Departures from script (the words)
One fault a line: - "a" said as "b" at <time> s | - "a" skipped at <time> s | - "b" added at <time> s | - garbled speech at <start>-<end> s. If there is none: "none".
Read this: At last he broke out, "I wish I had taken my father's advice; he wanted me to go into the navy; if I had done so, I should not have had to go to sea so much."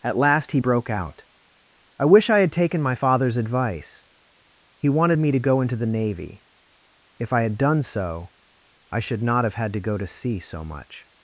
none